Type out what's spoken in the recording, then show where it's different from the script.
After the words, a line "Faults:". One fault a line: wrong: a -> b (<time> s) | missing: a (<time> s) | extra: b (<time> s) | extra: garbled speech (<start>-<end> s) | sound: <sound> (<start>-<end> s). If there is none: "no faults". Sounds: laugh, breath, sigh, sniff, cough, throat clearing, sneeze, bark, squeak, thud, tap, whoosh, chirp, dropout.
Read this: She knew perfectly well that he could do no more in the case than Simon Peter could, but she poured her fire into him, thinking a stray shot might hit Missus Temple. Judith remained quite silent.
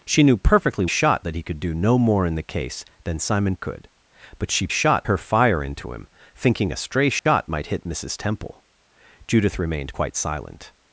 She knew perfectly shot that he could do no more in the case than Simon Could, but she shot her fire into him, thinking a stray shot might hit Missus Temple. Judith remained quite silent.
Faults:
wrong: well -> shot (0.8 s)
missing: Peter (3.6 s)
wrong: poured -> shot (4.7 s)
sound: dropout (7.2-7.3 s)